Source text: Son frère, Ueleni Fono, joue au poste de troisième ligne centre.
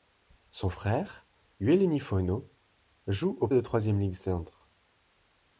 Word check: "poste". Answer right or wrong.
wrong